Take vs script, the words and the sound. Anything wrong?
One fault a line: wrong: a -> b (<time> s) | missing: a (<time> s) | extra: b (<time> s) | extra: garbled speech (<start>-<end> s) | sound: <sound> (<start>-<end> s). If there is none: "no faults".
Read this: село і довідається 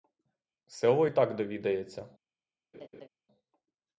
extra: так (1.1 s)
sound: laugh (2.7-3.1 s)